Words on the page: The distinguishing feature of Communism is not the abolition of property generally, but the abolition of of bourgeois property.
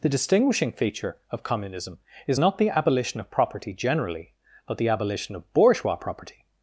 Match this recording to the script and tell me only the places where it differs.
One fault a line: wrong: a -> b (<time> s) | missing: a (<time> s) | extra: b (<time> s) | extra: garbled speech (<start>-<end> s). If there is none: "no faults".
missing: of (5.5 s)